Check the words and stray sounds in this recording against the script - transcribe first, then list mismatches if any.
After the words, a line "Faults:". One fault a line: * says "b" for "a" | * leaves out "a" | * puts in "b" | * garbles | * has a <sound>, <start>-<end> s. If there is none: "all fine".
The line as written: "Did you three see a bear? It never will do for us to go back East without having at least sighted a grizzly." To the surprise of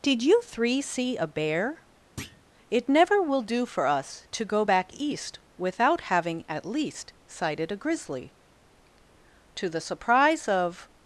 "Did you three see a bear? It never will do for us to go back East without having at least sighted a grizzly." To the surprise of
Faults:
* has a thud, 2.2-2.4 s